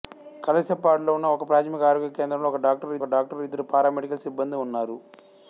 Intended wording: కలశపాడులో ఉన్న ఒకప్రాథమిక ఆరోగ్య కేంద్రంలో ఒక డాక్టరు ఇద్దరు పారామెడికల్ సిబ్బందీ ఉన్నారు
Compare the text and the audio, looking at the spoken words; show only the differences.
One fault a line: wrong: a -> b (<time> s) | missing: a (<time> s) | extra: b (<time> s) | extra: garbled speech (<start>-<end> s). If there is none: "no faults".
extra: ఒక డాక్టరు (3.0 s)